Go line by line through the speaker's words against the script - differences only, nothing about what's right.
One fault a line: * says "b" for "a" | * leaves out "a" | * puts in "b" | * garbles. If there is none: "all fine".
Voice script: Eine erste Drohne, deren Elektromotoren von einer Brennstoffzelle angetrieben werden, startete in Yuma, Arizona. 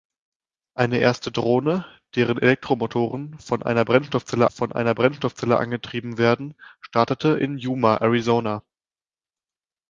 * puts in "von einer Brennstoffzelle"